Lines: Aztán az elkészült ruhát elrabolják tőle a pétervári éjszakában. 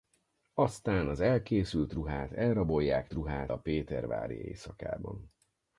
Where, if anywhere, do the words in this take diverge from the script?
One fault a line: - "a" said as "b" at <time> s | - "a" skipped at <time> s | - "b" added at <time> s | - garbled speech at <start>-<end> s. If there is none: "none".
- "tőle" said as "ruhát" at 3.1 s